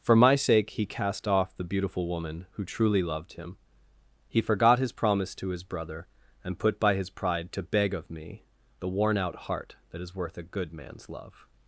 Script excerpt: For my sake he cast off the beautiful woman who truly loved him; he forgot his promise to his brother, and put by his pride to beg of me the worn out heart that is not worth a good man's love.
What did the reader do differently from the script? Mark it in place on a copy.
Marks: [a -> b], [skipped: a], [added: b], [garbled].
For my sake he cast off the beautiful woman who truly loved him; he forgot his promise to his brother, and put by his pride to beg of me the worn out heart that is [skipped: not] worth a good man's love.